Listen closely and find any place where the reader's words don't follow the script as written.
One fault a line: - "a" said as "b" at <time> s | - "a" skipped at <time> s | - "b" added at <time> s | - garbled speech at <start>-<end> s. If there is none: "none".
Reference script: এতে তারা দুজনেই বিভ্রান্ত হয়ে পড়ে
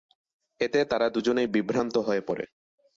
none